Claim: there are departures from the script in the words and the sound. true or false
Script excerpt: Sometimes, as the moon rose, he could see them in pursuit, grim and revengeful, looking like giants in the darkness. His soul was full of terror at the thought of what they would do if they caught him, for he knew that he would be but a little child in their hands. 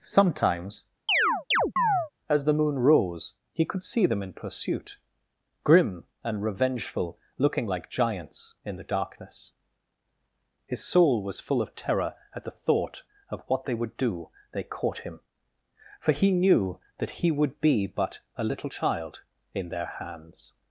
true